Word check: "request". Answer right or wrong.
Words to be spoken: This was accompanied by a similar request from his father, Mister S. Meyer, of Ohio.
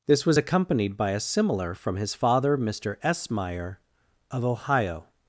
wrong